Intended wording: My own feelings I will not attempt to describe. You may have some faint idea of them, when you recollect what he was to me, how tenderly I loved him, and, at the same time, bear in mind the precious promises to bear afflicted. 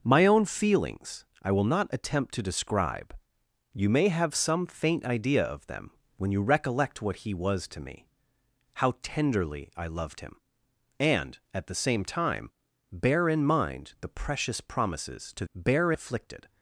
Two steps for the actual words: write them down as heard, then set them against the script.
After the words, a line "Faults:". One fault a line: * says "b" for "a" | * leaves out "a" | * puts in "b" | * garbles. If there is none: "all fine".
My own feelings I will not attempt to describe. You may have some faint idea of them, when you recollect what he was to me, how tenderly I loved him, and, at the same time, bear in mind the precious promises to bear afflicted.
Faults:
all fine